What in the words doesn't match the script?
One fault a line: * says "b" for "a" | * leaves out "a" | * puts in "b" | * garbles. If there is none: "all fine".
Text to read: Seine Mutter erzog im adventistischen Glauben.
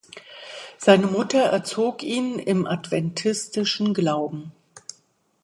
* puts in "ihn"